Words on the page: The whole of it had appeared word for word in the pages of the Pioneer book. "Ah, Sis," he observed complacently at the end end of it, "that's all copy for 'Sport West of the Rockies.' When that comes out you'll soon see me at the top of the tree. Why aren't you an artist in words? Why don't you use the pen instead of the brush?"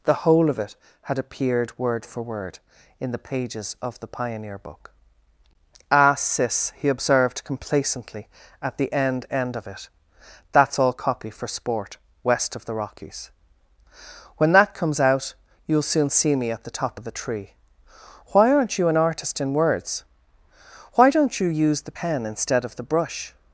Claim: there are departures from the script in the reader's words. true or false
false